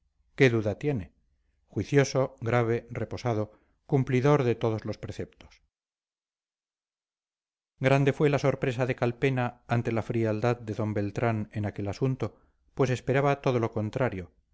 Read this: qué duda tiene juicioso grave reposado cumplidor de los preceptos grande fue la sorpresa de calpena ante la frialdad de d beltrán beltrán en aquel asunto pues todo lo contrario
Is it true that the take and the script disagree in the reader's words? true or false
true